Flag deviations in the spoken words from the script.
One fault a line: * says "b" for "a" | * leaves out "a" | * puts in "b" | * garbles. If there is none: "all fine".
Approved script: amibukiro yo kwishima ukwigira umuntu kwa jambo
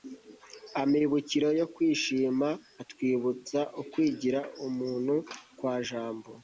* puts in "atwibutsa"